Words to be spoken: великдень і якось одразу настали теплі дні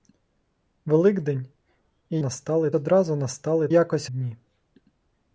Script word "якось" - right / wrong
wrong